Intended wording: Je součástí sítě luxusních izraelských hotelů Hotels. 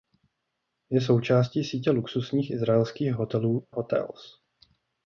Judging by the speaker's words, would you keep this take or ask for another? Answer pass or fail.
pass